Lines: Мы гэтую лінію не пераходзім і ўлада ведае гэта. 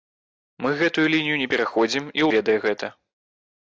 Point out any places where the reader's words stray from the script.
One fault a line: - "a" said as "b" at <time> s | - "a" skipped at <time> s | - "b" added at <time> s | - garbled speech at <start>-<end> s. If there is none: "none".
- "ўлада" skipped at 2.3 s